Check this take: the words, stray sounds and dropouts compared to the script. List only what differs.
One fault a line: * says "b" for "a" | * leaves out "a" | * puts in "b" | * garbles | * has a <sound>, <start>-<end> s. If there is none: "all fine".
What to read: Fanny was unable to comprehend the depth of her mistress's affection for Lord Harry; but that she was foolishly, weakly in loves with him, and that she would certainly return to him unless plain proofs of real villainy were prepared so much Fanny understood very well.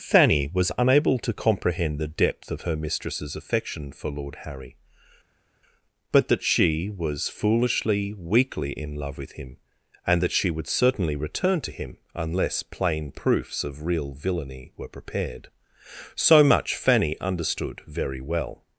* says "love" for "loves"